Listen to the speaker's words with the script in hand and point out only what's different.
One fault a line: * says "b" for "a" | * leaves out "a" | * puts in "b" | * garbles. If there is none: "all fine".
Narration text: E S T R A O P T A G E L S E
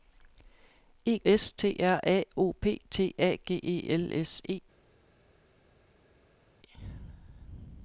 all fine